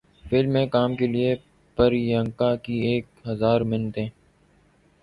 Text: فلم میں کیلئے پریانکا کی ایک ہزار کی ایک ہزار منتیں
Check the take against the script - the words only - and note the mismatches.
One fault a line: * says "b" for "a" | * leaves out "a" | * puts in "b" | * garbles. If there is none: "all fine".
* puts in "کام"
* leaves out "کی ایک ہزار"